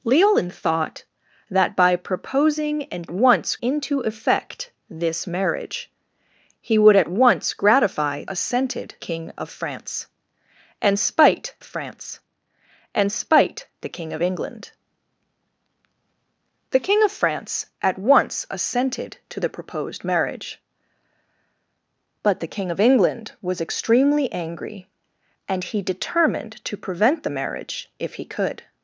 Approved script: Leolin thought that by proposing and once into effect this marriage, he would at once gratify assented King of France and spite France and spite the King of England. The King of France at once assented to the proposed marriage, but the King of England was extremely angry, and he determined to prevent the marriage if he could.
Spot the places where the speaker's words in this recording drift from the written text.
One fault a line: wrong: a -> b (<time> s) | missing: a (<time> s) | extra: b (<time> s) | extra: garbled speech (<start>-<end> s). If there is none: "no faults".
no faults